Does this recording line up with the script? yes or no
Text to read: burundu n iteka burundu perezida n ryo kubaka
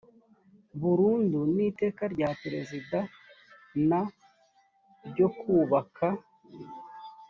no